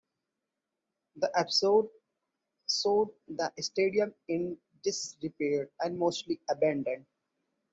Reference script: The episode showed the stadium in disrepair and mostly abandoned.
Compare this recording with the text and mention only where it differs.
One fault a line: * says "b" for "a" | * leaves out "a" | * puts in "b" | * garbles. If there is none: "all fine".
all fine